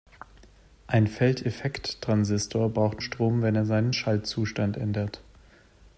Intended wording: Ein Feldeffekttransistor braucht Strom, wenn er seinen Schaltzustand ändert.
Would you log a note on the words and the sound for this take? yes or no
no